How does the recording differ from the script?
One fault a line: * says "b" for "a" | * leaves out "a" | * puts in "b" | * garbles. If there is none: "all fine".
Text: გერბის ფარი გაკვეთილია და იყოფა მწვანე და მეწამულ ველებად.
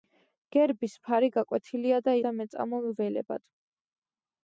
* leaves out "იყოფა მწვანე"